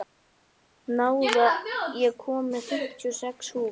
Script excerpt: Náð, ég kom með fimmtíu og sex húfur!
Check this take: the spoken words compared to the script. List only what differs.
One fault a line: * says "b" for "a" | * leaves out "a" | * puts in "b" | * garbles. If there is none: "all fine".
all fine